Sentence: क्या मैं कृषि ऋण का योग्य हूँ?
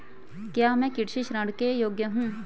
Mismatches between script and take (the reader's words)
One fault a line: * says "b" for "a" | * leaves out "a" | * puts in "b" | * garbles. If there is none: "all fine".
* says "के" for "का"